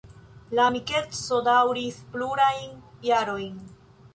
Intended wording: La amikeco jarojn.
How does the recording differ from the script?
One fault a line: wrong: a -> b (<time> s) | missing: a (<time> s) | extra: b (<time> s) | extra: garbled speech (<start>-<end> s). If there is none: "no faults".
extra: daŭris plurajn (1.5 s)